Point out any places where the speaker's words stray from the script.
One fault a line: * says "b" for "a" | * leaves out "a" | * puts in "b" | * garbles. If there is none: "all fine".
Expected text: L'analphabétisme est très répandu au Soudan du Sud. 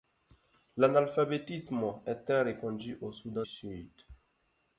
* leaves out "du"